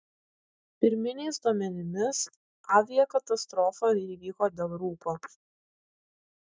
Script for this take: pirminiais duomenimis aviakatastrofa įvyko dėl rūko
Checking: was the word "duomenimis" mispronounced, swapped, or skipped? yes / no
no